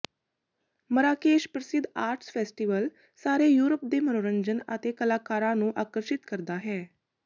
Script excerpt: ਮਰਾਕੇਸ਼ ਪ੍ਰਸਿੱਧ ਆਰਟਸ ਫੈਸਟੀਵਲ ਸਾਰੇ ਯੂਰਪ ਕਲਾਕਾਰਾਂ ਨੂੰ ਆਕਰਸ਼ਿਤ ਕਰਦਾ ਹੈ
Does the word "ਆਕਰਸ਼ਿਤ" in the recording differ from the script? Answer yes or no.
no